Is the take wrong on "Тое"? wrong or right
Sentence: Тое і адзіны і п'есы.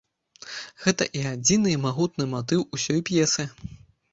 wrong